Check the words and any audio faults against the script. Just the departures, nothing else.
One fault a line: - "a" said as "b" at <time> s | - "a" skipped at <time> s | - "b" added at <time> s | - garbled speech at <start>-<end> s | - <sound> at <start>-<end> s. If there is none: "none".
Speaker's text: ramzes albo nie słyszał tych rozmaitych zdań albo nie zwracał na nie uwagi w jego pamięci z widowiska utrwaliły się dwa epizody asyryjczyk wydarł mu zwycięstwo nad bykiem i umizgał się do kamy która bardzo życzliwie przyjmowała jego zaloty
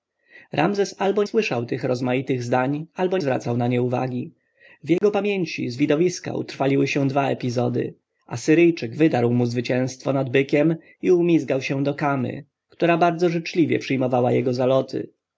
- "nie" skipped at 1.2 s
- "nie" skipped at 3.2 s
- dropout at 5.0-5.0 s